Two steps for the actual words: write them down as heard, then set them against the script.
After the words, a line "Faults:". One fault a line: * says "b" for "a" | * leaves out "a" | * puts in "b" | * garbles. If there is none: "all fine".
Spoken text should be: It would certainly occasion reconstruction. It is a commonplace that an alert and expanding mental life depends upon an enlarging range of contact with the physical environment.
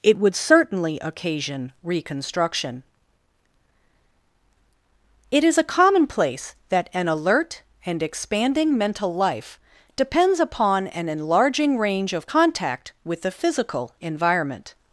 It would certainly occasion reconstruction. It is a commonplace that an alert and expanding mental life depends upon an enlarging range of contact with the physical environment.
Faults:
all fine